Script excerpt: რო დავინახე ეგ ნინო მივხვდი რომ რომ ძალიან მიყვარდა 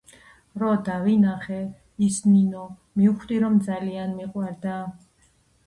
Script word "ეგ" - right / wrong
wrong